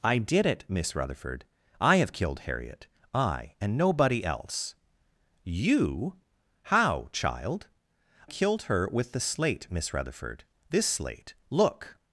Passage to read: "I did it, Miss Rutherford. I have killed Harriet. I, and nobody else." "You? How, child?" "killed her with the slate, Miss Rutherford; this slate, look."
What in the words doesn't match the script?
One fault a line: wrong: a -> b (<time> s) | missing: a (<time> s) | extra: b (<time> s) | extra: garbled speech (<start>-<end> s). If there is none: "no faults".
no faults